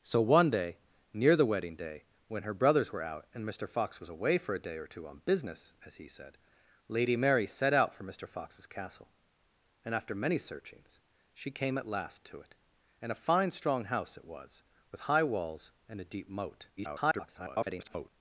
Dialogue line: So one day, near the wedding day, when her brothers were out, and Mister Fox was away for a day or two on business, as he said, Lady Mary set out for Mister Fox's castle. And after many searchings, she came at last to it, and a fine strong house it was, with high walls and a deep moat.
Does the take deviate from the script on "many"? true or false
false